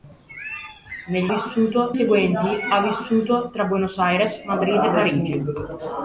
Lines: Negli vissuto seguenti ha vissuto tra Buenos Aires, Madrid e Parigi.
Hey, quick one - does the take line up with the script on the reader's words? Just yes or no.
yes